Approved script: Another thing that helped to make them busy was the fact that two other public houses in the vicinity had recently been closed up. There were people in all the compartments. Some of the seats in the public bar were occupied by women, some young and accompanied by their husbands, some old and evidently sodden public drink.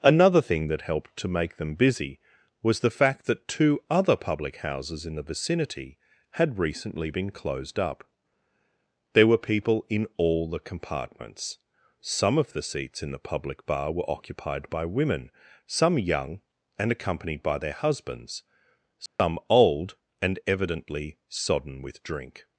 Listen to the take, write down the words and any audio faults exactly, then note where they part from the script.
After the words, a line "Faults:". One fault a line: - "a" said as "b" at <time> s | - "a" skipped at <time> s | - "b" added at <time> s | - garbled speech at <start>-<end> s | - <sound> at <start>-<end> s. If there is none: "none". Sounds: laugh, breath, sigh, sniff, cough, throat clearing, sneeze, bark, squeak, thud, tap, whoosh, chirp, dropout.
Another thing that helped to make them busy was the fact that two other public houses in the vicinity had recently been closed up. There were people in all the compartments. Some of the seats in the public bar were occupied by women, some young and accompanied by their husbands, some old and evidently sodden with drink.
Faults:
- dropout at 19.1-19.2 s
- "public" said as "with" at 21.8 s